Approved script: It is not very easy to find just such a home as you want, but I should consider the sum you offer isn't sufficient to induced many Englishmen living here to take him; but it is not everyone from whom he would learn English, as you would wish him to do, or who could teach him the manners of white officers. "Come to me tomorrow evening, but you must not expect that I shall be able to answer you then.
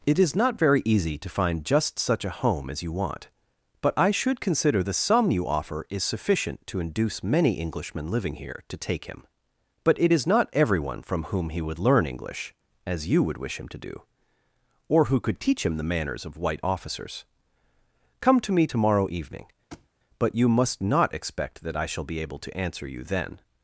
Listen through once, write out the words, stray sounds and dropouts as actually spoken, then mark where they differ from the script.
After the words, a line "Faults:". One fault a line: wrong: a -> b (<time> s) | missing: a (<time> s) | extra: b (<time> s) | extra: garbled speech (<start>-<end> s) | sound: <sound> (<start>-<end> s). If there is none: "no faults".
It is not very easy to find just such a home as you want, but I should consider the sum you offer is sufficient to induce many Englishmen living here to take him; but it is not everyone from whom he would learn English, as you would wish him to do, or who could teach him the manners of white officers. "Come to me tomorrow evening, but you must not expect that I shall be able to answer you then.
Faults:
wrong: isn't -> is (5.9 s)
wrong: induced -> induce (6.8 s)
sound: thud (19.7-19.9 s)